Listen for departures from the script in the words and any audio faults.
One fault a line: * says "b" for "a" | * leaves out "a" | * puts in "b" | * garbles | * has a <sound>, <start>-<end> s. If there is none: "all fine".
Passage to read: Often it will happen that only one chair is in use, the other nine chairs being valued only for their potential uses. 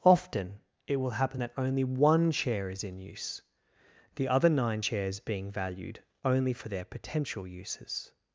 all fine